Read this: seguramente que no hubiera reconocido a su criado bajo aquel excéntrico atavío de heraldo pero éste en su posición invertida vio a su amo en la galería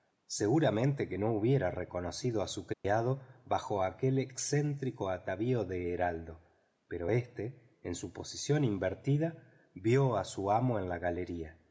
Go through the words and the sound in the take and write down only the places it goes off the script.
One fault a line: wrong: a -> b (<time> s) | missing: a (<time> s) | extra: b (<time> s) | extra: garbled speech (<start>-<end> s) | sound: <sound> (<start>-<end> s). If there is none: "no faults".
sound: dropout (2.7-2.8 s)